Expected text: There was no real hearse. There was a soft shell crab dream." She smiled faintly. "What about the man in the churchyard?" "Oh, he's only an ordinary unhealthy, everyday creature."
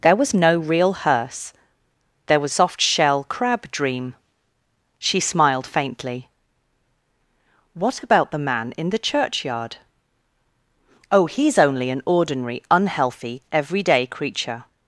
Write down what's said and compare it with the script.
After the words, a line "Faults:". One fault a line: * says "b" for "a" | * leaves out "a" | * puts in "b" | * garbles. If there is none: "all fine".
There was no real hearse. There was soft shell crab dream." She smiled faintly. "What about the man in the churchyard?" "Oh, he's only an ordinary unhealthy, everyday creature."
Faults:
* leaves out "a"